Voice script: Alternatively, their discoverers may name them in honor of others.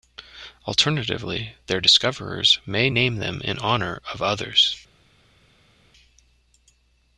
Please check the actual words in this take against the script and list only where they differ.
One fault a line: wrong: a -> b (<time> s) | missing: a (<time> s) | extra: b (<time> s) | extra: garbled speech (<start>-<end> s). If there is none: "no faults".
no faults